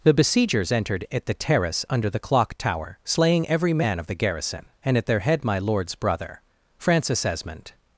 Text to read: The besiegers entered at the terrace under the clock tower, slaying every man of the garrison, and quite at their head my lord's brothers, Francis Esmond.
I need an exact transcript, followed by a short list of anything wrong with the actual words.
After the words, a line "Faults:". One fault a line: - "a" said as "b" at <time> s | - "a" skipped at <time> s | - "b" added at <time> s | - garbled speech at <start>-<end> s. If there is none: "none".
The besiegers entered at the terrace under the clock tower, slaying every man of the garrison, and at their head my lord's brother, Francis Esmond.
Faults:
- "quite" skipped at 5.0 s
- "brothers" said as "brother" at 6.0 s